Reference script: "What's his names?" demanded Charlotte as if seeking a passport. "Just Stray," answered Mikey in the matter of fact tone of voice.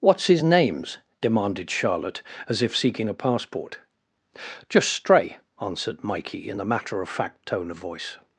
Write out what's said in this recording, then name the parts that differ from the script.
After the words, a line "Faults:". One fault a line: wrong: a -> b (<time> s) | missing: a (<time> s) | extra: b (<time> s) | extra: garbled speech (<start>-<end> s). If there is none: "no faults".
"What's his names?" demanded Charlotte as if seeking a passport. "Just Stray," answered Mikey in the matter of fact tone of voice.
Faults:
no faults